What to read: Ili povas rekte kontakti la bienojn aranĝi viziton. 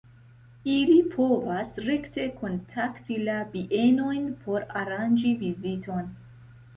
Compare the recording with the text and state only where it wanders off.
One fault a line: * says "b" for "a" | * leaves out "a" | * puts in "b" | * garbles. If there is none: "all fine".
* puts in "por"